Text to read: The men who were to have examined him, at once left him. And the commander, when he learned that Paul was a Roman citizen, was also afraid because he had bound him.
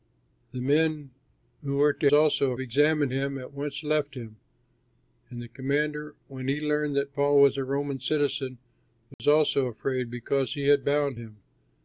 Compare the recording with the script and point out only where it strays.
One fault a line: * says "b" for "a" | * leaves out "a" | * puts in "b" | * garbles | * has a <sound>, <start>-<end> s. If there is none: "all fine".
* says "also" for "have"
* has a dropout, 9.1-9.2 s